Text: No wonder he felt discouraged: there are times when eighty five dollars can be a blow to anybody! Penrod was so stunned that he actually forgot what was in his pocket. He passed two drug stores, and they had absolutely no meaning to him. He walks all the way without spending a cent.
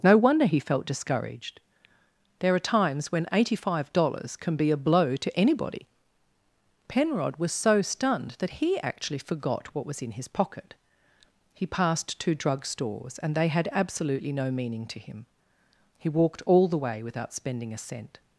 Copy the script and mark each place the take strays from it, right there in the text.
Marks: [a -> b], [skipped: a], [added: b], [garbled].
No wonder he felt discouraged: there are times when eighty five dollars can be a blow to anybody! Penrod was so stunned that he actually forgot what was in his pocket. He passed two drug stores, and they had absolutely no meaning to him. He [walks -> walked] all the way without spending a cent.